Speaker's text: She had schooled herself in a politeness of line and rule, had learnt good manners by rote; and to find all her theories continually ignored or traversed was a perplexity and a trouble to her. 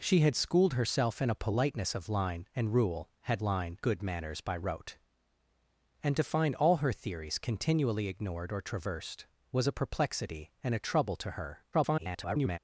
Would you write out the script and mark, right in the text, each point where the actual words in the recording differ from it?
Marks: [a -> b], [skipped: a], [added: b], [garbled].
She had schooled herself in a politeness of line and rule, had [learnt -> line] good manners by rote; and to find all her theories continually ignored or traversed was a perplexity and a trouble to her. [garbled]